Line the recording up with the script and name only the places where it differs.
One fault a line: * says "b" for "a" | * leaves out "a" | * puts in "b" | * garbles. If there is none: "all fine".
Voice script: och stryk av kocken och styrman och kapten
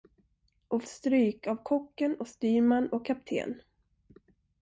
all fine